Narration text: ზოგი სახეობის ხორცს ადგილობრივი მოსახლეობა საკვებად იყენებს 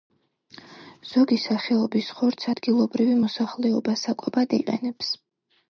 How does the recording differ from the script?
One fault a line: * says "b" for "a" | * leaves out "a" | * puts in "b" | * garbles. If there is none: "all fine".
all fine